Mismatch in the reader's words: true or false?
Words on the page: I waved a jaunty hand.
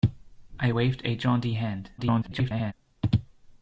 true